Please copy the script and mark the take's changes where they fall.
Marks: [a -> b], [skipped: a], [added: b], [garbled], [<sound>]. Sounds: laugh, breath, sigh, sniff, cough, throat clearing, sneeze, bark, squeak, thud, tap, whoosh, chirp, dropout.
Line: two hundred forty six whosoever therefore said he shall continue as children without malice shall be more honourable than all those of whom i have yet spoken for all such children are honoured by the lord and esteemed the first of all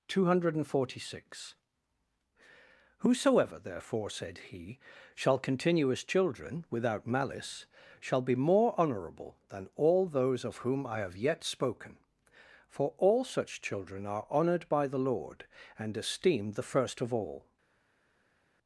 two hundred forty six whosoever therefore said he shall continue as children without malice shall be more honourable than all those of whom i have yet spoken for all such children are honoured by the lord and esteemed the first of all